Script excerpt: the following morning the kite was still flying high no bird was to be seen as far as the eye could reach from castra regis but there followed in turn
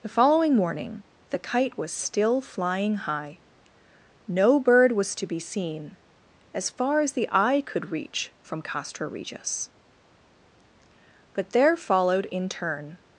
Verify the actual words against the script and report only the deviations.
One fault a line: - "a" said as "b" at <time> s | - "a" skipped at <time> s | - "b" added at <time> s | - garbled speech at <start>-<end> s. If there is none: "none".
none